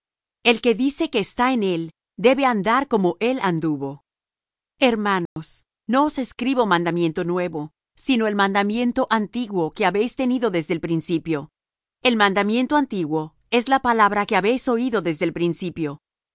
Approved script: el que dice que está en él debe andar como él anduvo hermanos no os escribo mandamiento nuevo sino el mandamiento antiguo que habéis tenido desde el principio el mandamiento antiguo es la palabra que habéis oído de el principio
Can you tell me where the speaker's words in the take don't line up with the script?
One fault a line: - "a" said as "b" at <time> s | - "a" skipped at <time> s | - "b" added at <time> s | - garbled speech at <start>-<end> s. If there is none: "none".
- "de" said as "desde" at 15.0 s